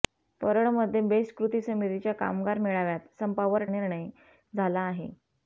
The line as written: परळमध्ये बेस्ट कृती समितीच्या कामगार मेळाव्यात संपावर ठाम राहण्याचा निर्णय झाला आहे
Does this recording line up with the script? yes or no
no